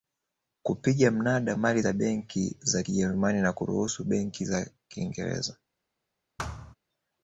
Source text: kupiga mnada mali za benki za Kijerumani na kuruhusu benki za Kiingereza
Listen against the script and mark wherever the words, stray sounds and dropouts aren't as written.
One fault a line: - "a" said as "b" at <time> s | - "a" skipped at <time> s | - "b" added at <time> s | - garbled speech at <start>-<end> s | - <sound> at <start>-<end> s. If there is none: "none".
- thud at 6.4-6.8 s